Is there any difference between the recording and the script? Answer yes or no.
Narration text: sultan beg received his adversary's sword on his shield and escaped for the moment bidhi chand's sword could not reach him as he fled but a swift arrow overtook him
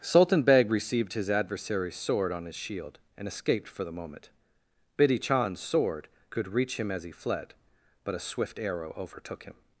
yes